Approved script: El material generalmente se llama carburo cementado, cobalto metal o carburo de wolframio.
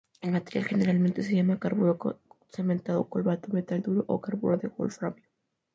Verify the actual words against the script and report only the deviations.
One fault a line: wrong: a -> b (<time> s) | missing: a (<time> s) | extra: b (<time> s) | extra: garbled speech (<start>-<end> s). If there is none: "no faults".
extra: duro (3.8 s)